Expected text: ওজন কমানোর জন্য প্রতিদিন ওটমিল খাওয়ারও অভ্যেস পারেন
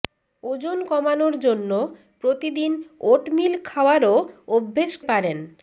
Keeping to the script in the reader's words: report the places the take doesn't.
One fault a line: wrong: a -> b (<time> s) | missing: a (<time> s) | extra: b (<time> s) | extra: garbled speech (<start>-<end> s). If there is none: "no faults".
no faults